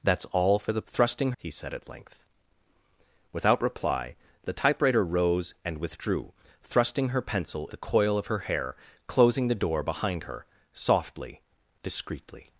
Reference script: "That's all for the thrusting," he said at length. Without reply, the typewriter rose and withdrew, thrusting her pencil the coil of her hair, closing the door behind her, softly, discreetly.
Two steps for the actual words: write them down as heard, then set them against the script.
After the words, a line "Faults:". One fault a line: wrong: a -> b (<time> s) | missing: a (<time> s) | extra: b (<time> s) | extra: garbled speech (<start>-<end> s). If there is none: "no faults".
"That's all for the thrusting," he said at length. Without reply, the typewriter rose and withdrew, thrusting her pencil the coil of her hair, closing the door behind her, softly, discreetly.
Faults:
no faults